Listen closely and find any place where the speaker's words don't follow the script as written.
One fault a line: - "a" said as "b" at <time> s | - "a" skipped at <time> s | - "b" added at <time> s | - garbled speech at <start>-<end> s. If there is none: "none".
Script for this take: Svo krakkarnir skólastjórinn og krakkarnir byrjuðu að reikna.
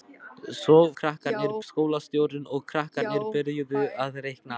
none